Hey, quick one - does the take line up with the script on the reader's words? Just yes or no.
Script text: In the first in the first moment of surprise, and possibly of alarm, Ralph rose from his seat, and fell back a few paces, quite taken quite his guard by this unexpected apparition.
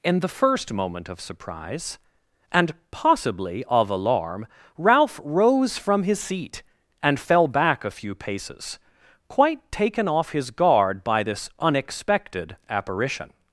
no